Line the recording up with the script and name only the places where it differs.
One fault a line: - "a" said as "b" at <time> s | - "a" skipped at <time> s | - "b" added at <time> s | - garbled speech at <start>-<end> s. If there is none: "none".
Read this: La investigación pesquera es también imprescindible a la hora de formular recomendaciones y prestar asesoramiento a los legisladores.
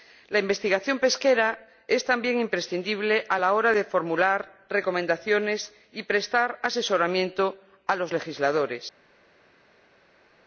none